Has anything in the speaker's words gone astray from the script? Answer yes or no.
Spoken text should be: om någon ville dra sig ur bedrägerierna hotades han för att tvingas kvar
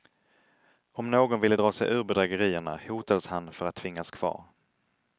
no